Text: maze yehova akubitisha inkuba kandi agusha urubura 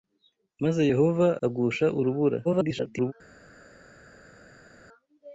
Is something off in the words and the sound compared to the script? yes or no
yes